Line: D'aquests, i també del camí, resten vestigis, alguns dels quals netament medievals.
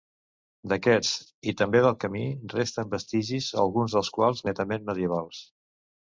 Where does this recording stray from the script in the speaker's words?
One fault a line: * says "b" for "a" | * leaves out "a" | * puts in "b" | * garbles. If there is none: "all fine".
all fine